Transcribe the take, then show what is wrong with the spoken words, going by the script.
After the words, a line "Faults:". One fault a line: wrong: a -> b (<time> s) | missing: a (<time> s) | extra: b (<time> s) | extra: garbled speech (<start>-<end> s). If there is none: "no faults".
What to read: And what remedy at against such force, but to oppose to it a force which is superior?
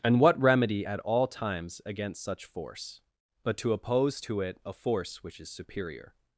And what remedy at all times against such force, but to oppose to it a force which is superior?
Faults:
extra: all times (1.0 s)